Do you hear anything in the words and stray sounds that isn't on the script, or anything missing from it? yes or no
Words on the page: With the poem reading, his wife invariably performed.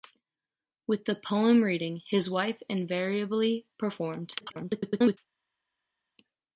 yes